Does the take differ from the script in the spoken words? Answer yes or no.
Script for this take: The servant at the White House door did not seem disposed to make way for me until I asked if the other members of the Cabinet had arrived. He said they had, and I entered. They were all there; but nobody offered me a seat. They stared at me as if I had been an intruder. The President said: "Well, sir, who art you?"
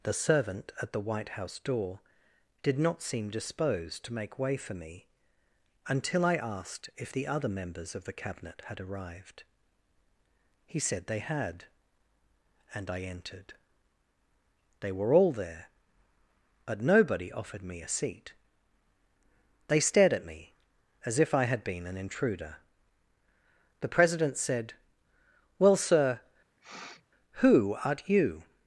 no